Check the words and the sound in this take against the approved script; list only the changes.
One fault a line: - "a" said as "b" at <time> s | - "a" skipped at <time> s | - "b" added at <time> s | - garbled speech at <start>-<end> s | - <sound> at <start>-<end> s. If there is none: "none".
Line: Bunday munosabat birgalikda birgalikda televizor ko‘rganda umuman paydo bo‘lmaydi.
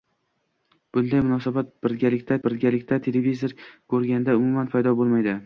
none